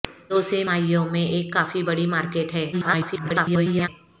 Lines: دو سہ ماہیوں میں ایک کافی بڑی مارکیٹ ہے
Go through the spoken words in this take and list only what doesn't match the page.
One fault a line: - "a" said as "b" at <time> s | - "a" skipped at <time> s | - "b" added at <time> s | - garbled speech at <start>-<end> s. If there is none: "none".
- garbled speech at 2.7-3.9 s